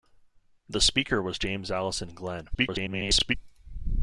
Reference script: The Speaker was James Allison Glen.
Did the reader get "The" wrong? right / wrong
right